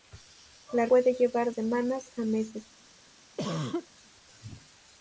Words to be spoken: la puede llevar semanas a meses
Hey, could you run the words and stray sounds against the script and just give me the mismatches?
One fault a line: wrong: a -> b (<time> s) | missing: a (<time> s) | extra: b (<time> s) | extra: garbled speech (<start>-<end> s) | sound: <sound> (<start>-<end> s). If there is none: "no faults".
sound: cough (3.4-3.9 s)